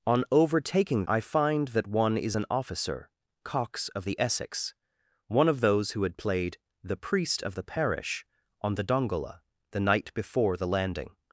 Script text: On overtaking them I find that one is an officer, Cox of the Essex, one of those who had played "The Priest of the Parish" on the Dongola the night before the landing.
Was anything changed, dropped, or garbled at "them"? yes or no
yes